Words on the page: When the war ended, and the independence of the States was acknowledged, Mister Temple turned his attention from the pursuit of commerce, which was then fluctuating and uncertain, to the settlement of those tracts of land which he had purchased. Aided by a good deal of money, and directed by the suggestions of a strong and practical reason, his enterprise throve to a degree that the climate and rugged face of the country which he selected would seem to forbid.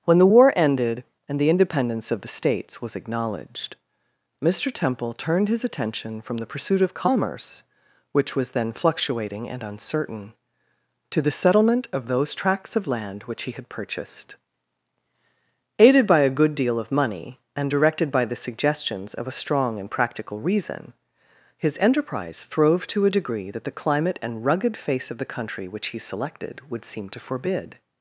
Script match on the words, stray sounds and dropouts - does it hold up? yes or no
yes